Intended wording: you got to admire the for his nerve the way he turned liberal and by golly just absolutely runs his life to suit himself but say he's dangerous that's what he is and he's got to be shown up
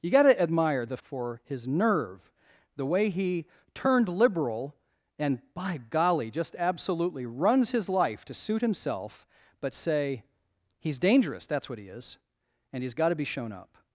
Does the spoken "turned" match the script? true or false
true